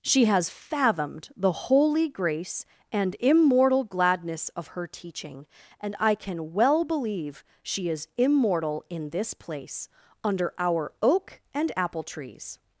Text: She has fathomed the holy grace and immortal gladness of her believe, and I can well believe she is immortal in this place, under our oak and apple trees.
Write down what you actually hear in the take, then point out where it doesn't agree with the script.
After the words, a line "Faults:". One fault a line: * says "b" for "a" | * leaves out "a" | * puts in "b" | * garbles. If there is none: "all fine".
She has fathomed the holy grace and immortal gladness of her teaching, and I can well believe she is immortal in this place, under our oak and apple trees.
Faults:
* says "teaching" for "believe"